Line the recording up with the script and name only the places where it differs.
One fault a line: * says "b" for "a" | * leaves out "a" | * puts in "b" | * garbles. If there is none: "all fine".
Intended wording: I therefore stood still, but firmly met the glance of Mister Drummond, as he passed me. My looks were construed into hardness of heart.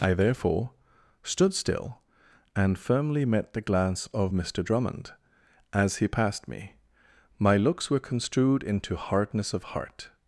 * says "and" for "but"